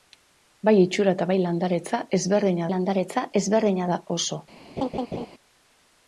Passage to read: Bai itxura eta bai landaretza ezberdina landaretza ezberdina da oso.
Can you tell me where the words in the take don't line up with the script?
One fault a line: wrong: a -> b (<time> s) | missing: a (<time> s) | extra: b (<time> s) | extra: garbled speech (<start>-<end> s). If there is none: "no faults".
no faults